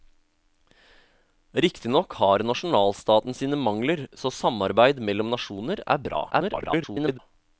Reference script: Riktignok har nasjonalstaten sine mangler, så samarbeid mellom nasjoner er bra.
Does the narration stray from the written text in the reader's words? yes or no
yes